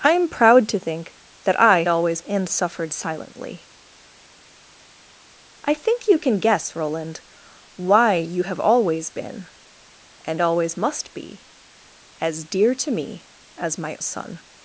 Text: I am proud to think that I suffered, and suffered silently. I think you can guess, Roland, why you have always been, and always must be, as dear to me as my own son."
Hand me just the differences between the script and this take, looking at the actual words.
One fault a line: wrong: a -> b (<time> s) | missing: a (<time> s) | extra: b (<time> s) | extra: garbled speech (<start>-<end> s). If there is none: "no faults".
wrong: suffered -> always (1.9 s)
missing: own (14.0 s)